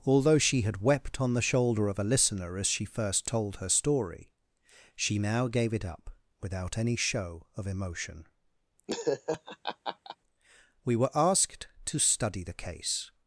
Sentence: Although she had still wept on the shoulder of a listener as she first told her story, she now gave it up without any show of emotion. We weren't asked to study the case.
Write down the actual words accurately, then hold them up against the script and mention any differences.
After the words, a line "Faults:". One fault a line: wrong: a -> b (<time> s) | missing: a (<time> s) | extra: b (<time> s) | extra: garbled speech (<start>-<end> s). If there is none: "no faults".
Although she had wept on the shoulder of a listener as she first told her story, she now gave it up without any show of emotion. We were asked to study the case.
Faults:
missing: still (0.8 s)
wrong: weren't -> were (11.0 s)